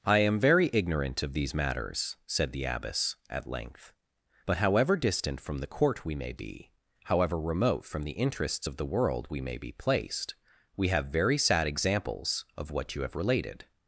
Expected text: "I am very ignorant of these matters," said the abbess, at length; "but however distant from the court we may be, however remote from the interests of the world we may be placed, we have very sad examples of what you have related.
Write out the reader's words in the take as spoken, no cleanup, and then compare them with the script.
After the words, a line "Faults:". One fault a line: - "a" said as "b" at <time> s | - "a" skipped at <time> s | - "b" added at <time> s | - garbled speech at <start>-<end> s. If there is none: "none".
"I am very ignorant of these matters," said the abbess, at length; "but however distant from the court we may be, however remote from the interests of the world we may be placed, we have very sad examples of what you have related.
Faults:
none